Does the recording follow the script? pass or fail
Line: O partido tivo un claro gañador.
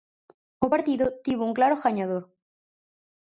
pass